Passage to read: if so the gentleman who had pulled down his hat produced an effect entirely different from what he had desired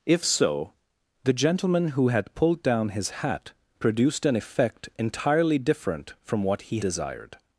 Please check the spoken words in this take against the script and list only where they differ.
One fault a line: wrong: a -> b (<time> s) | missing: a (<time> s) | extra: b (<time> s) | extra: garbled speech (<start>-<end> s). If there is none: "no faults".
missing: had (6.8 s)